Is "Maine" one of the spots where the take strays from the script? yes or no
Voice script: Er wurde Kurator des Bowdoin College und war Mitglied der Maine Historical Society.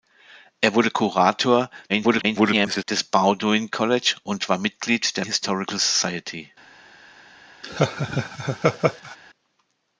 yes